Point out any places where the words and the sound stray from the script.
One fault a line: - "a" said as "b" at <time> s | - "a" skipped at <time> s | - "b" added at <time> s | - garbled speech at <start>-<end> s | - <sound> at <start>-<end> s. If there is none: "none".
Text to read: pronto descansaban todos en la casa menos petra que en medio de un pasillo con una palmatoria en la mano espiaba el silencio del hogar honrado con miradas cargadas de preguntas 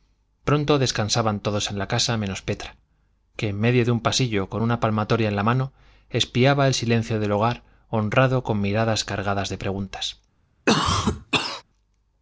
- cough at 10.7-11.6 s